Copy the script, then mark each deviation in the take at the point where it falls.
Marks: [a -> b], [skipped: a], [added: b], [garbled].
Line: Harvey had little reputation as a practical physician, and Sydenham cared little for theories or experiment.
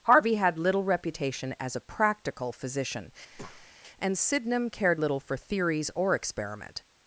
Harvey had little reputation as a practical physician, and Sydenham cared little for theories or experiment.